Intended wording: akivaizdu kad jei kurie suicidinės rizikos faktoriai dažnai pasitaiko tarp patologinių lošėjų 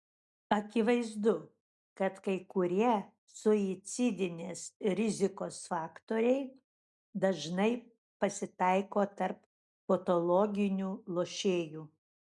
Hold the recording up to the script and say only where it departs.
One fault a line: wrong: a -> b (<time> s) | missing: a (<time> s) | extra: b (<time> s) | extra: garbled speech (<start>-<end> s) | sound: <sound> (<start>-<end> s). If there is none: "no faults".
wrong: jei -> kai (2.3 s)